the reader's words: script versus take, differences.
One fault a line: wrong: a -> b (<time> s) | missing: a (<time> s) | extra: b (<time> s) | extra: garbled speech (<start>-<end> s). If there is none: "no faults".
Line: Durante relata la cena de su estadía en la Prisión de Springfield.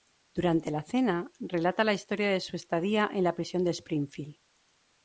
extra: la cena (0.7 s)
wrong: cena -> historia (1.9 s)